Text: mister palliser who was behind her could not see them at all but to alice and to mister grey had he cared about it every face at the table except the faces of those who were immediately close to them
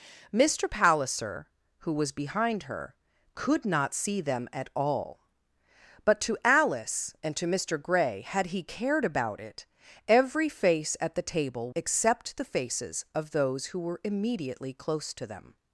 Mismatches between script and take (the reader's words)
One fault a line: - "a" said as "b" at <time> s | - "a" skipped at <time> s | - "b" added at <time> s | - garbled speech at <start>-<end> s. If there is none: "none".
none